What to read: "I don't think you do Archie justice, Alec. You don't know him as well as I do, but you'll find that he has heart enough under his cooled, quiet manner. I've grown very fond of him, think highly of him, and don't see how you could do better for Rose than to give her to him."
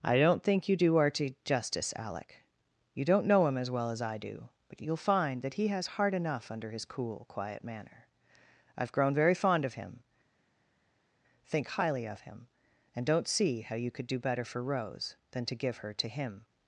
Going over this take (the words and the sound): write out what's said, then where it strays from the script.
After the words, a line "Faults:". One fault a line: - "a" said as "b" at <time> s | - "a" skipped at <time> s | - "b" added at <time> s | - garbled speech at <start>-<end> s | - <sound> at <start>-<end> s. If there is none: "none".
"I don't think you do Archie justice, Alec. You don't know him as well as I do, but you'll find that he has heart enough under his cool, quiet manner. I've grown very fond of him, think highly of him, and don't see how you could do better for Rose than to give her to him."
Faults:
- "cooled" said as "cool" at 6.8 s